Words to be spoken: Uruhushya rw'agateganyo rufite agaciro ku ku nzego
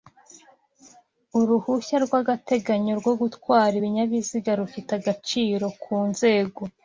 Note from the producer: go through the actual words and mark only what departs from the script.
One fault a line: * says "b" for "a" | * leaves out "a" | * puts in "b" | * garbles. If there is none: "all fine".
* puts in "rwo gutwara ibinyabiziga"
* leaves out "ku"